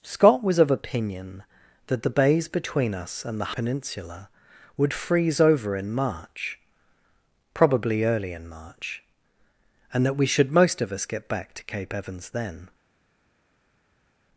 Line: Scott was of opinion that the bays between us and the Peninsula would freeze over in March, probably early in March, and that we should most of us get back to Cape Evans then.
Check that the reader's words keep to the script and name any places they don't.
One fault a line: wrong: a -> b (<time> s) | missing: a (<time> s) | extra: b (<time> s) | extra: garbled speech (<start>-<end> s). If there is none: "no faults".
no faults